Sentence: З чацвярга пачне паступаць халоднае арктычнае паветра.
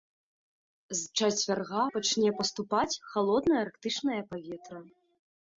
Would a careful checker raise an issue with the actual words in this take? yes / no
no